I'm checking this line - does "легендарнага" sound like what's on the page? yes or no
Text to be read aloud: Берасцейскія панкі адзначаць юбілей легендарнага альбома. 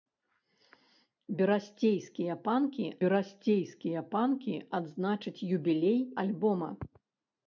no